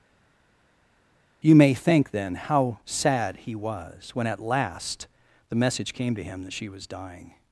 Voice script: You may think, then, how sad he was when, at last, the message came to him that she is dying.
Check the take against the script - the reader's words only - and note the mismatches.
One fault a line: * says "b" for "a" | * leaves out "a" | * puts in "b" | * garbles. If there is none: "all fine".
* says "was" for "is"